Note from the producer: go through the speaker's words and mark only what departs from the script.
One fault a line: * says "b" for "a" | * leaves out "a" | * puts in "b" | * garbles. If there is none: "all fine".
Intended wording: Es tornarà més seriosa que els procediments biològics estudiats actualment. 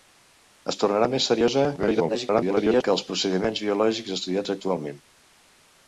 * garbles